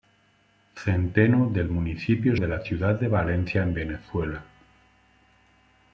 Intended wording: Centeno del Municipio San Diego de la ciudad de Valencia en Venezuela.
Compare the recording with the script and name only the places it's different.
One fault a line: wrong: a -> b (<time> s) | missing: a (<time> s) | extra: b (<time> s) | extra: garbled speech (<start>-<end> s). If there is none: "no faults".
missing: San Diego (2.4 s)